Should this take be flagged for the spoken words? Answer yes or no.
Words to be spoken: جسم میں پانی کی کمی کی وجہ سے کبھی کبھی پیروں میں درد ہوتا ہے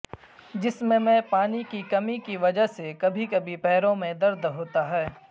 no